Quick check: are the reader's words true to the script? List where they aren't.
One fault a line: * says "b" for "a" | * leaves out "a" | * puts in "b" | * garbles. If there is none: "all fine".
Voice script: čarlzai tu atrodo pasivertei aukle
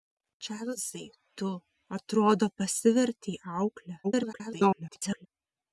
* garbles